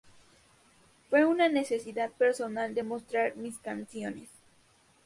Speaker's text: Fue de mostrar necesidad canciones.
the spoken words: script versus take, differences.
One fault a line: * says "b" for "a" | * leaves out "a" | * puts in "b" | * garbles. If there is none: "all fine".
* puts in "una necesidad personal"
* says "mis" for "necesidad"